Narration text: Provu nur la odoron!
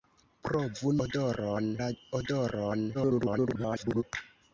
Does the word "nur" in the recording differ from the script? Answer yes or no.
yes